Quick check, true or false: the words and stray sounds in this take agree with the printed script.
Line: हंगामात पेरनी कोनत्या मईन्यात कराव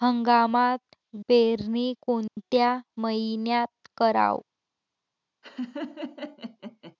false